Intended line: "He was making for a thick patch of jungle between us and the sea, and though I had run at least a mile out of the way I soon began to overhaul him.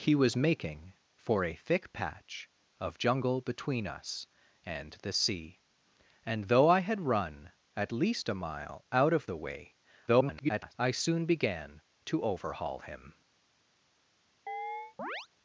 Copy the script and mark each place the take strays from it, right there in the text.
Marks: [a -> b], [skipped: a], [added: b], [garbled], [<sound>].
"He was making for a thick patch of jungle between us and the sea, and though I had run at least a mile out of the way [garbled] I soon began to overhaul him. [chirp]